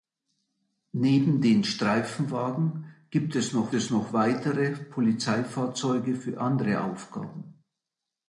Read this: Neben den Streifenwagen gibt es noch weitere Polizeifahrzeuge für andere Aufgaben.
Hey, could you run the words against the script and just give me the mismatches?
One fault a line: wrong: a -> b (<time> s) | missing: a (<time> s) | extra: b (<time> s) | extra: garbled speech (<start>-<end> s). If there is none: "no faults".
extra: es noch (3.7 s)